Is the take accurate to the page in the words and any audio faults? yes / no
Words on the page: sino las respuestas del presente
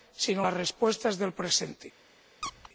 no